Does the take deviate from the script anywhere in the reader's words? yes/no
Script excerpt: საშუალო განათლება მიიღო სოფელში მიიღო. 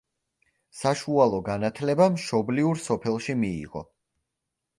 yes